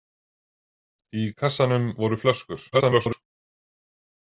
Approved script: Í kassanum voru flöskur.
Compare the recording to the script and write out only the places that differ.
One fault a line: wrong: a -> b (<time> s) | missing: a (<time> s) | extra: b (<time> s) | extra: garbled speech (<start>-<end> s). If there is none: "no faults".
extra: garbled speech (2.7-3.2 s)